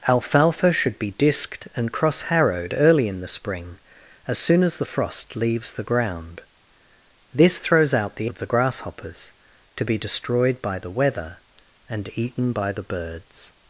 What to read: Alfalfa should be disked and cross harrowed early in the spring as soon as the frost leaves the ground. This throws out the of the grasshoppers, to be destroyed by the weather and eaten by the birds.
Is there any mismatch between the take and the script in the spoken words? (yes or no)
no